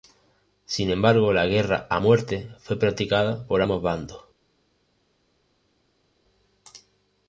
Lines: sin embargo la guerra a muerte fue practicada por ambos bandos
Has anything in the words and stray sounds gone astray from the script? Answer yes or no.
no